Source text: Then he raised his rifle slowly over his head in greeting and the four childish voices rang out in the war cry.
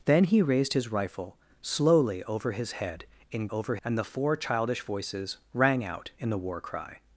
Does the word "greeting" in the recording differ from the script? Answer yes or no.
yes